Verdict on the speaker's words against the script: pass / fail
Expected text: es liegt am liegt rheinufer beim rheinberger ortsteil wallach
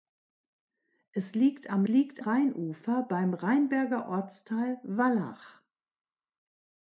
pass